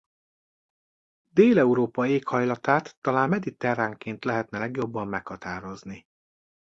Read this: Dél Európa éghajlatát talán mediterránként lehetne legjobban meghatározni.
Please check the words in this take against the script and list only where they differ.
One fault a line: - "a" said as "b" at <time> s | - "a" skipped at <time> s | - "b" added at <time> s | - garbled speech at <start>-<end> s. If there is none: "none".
none